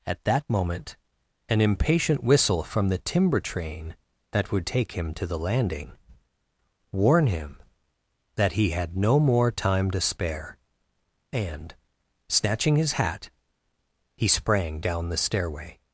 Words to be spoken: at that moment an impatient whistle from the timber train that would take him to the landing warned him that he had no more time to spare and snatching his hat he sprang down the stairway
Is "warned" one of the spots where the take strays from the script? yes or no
yes